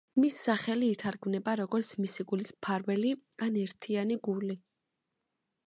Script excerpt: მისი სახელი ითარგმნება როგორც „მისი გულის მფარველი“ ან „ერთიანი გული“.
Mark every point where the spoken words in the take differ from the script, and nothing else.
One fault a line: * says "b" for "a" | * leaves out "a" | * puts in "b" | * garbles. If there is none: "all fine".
all fine